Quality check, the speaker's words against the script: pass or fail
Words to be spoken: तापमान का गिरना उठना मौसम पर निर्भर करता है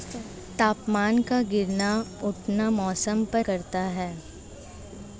fail